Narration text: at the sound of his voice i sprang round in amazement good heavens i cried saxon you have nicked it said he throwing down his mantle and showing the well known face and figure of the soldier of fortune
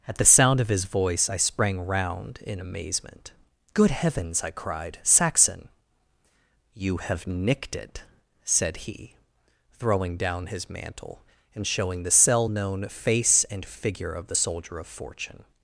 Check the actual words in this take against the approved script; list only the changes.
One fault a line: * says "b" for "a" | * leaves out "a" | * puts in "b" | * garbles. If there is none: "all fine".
* says "cell" for "well"